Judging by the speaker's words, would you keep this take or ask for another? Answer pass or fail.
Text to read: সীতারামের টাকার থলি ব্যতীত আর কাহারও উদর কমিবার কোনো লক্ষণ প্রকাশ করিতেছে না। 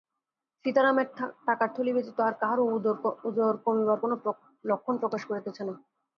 pass